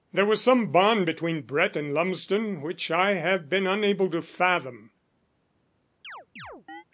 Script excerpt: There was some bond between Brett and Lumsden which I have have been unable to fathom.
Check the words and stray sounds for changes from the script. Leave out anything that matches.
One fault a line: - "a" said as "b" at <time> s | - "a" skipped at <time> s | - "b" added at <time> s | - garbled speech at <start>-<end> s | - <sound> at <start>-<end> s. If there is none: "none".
- "have" skipped at 3.5 s
- chirp at 6.0-6.8 s